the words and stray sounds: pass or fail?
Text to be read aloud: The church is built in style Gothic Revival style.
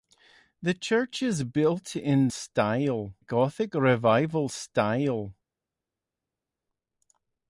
pass